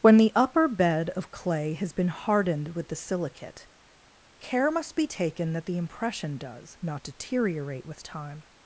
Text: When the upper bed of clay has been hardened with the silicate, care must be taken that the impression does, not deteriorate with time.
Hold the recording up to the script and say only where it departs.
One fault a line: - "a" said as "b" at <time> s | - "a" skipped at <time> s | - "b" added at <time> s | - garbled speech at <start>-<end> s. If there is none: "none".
none